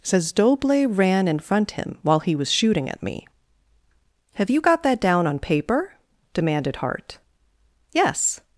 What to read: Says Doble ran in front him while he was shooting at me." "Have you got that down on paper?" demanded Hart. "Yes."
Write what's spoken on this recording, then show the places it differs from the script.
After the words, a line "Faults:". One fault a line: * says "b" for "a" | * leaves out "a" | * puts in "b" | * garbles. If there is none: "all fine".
Says Doble ran in front him while he was shooting at me." "Have you got that down on paper?" demanded Hart. "Yes."
Faults:
all fine